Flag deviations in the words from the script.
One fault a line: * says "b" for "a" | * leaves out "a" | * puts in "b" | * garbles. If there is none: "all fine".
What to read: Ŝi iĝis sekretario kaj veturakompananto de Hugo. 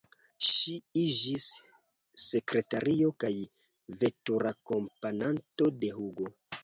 all fine